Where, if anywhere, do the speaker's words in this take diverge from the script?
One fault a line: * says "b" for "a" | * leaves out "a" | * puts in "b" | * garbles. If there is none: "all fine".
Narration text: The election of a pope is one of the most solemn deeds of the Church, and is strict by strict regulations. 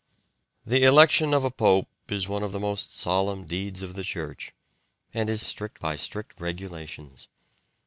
all fine